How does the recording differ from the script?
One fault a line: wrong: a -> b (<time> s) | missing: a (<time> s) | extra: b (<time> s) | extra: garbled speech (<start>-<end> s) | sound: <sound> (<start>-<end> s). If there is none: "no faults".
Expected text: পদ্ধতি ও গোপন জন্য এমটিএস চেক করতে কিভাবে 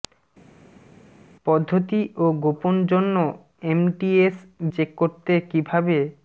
no faults